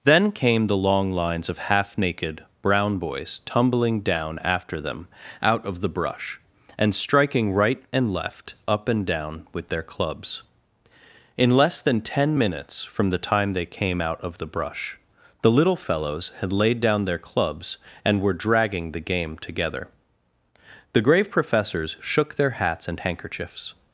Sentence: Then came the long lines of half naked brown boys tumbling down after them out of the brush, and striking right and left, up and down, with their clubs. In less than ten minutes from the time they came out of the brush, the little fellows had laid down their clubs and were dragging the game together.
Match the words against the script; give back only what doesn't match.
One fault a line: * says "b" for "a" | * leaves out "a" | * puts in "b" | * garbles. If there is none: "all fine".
* puts in "The grave professors shook their hats and handkerchiefs"